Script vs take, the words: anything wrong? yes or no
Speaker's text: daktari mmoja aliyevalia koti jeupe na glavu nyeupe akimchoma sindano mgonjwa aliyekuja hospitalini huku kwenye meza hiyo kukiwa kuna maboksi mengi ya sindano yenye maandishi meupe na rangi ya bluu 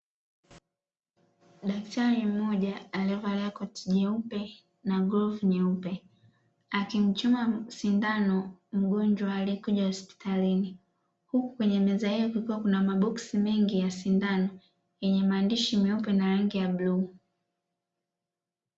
no